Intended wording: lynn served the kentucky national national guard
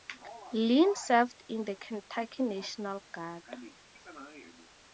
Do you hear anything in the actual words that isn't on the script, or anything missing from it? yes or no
yes